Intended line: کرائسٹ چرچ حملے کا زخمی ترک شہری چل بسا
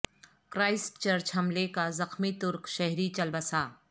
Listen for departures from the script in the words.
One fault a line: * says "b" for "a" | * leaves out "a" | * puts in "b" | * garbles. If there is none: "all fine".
all fine